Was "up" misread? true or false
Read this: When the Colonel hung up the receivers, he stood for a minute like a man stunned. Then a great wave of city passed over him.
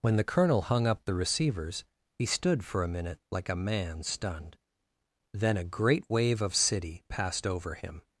false